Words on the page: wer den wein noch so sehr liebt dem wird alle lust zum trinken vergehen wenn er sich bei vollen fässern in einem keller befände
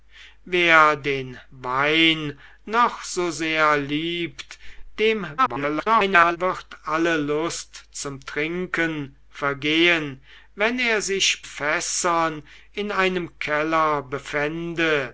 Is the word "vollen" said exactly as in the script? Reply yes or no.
no